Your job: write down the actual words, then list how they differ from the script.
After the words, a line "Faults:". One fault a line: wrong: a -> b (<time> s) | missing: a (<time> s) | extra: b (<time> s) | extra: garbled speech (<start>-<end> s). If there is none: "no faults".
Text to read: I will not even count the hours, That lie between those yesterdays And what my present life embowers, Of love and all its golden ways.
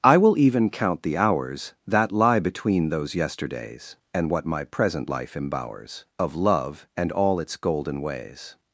I will even count the hours, That lie between those yesterdays And what my present life embowers, Of love and all its golden ways.
Faults:
missing: not (0.3 s)